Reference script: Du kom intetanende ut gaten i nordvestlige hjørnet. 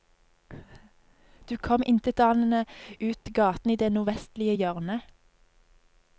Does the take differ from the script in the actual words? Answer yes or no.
yes